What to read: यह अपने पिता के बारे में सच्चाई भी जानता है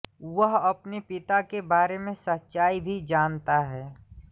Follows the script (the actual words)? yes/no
no